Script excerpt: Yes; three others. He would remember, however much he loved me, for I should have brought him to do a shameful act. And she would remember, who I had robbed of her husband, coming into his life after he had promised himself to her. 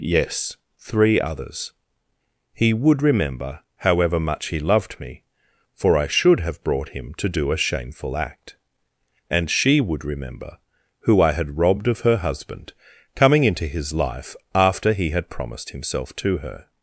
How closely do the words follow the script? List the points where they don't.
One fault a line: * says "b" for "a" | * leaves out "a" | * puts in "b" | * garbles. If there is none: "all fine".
all fine